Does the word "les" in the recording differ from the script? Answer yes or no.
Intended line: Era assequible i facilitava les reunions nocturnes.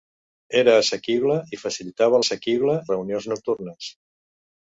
yes